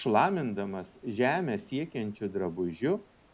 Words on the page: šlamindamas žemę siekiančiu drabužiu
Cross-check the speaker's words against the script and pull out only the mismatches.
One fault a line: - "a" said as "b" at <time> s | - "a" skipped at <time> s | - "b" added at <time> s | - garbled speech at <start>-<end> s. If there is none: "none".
none